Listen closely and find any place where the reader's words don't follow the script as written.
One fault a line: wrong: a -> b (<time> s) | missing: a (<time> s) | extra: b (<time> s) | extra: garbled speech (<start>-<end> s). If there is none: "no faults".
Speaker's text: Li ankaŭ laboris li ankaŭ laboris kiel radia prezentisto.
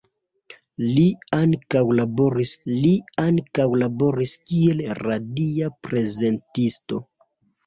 no faults